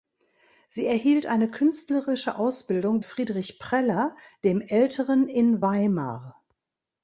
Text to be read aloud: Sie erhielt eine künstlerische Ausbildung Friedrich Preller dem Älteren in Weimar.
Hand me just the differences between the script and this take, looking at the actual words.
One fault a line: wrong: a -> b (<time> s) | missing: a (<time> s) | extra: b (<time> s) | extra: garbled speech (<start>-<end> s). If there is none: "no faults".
no faults